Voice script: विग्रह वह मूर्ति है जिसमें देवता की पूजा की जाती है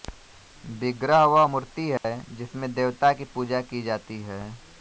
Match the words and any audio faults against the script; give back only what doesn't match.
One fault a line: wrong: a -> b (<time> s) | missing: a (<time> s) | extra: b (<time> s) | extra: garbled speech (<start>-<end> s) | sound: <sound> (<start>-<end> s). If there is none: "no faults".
sound: dropout (2.0-2.0 s)